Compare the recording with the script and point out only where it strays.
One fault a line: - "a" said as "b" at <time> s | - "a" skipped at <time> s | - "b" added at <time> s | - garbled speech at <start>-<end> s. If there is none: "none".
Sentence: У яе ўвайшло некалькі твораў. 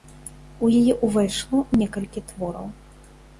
none